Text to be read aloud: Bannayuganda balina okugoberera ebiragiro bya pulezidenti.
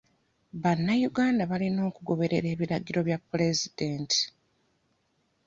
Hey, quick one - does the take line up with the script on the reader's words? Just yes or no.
yes